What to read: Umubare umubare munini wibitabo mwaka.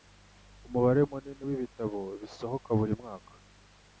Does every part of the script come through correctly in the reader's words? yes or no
no